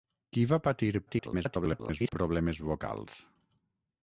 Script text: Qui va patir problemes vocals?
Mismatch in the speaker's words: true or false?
true